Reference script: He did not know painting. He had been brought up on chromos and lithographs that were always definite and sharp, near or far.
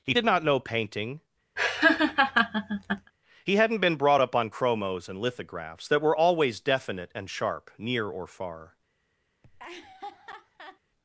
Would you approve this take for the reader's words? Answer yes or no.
no